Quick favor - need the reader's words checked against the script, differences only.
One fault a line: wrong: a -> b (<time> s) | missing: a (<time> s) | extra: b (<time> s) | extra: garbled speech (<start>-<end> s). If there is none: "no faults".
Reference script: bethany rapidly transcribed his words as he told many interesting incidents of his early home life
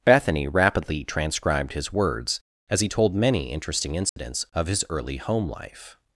no faults